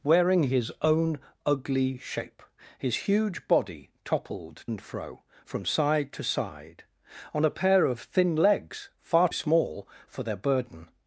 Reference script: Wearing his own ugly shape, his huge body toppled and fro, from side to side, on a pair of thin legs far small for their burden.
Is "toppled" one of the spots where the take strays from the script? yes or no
no